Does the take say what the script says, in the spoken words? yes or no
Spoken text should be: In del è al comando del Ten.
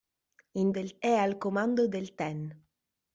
yes